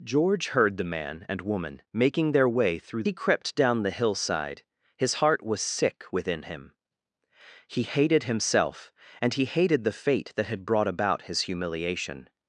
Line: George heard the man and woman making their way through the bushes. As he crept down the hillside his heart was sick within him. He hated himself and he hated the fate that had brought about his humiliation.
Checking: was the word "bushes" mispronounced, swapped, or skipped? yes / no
yes